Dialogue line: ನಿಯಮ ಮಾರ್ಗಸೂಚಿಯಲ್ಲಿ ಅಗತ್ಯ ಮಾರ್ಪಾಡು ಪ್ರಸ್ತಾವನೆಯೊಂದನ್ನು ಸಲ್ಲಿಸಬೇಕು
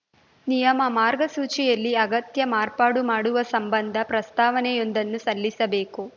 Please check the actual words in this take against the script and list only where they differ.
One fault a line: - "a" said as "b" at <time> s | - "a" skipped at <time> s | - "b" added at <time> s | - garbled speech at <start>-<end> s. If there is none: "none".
- "ಮಾಡುವ ಸಂಬಂಧ" added at 3.0 s